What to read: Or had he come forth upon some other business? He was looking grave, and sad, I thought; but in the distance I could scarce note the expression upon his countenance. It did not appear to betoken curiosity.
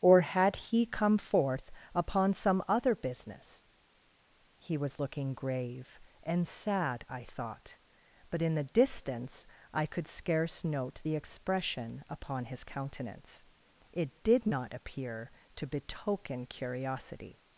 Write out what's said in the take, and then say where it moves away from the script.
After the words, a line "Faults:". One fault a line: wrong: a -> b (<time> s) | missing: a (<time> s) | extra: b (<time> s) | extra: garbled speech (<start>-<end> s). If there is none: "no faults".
Or had he come forth upon some other business? He was looking grave, and sad, I thought; but in the distance I could scarce note the expression upon his countenance. It did not appear to betoken curiosity.
Faults:
no faults